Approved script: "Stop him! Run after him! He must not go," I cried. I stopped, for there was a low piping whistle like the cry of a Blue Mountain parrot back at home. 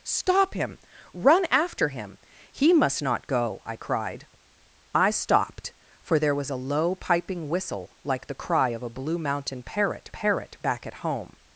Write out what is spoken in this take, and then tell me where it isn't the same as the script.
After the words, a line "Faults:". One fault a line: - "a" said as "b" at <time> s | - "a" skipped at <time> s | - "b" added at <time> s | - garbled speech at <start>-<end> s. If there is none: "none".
"Stop him! Run after him! He must not go," I cried. I stopped, for there was a low piping whistle like the cry of a Blue Mountain parrot parrot back at home.
Faults:
- "parrot" added at 10.1 s